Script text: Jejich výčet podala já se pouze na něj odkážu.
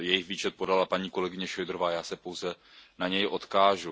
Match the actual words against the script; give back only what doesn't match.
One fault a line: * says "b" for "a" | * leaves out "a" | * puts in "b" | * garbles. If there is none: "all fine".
* puts in "paní kolegyně Šojdrová"